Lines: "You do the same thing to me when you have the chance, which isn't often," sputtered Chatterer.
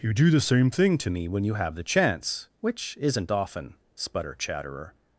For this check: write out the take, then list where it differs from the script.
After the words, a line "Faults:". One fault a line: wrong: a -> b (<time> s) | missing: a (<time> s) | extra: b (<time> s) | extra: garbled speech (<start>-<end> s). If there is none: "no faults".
"You do the same thing to me when you have the chance, which isn't often," sputter Chatterer.
Faults:
wrong: sputtered -> sputter (3.9 s)